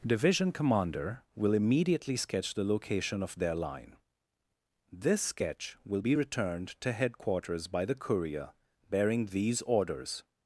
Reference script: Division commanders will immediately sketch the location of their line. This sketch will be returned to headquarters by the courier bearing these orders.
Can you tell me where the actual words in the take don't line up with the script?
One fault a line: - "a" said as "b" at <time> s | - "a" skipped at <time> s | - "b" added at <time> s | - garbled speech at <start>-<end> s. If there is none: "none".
- "commanders" said as "commander" at 0.5 s